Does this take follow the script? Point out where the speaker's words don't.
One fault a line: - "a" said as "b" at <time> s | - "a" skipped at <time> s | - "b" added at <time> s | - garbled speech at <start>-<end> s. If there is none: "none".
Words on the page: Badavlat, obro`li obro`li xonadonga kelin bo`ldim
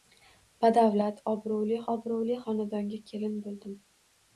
none